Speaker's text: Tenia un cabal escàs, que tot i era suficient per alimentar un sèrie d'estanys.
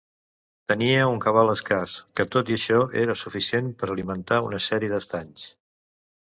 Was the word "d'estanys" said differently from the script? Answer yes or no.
no